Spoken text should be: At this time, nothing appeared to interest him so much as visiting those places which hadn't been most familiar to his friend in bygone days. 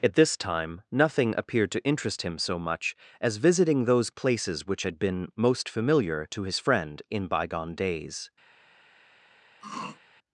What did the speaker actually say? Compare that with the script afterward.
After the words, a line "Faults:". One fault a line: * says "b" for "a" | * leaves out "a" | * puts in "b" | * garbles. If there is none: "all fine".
At this time, nothing appeared to interest him so much as visiting those places which had been most familiar to his friend in bygone days.
Faults:
* says "had" for "hadn't"